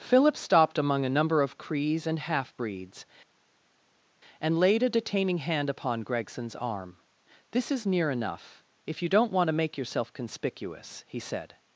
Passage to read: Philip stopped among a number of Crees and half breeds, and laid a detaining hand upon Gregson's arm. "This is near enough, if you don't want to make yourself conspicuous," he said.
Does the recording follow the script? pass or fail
pass